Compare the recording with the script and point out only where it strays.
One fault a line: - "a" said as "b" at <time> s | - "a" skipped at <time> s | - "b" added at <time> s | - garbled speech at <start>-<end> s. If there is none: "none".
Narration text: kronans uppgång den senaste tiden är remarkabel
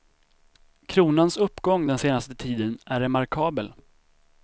none